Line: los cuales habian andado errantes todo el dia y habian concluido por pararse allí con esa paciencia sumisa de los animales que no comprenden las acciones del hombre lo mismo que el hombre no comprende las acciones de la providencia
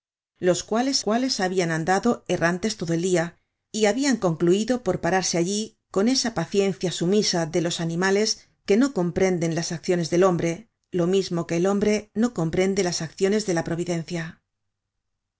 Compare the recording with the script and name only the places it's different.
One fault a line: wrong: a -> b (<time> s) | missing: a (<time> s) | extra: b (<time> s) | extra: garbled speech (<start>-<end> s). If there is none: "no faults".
extra: cuales (1.0 s)